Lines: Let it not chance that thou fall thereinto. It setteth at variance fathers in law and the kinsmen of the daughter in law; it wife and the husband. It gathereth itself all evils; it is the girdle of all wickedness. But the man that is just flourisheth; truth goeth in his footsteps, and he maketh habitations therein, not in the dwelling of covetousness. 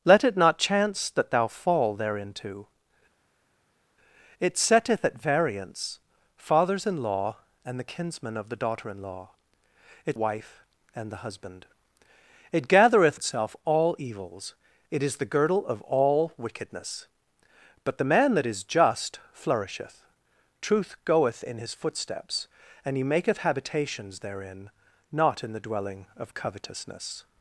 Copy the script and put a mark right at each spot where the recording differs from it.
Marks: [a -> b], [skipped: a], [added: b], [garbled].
Let it not chance that thou fall thereinto. It setteth at variance fathers in law and the kinsmen of the daughter in law; it wife and the husband. It gathereth itself all evils; it is the girdle of all wickedness. But the man that is just flourisheth; truth goeth in his footsteps, and he maketh habitations therein, not in the dwelling of covetousness.